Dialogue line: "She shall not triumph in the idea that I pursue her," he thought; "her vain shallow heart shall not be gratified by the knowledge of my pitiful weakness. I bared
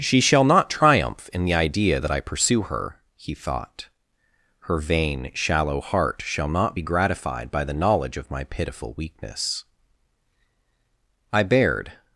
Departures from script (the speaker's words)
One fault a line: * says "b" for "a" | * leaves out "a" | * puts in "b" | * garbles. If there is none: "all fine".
all fine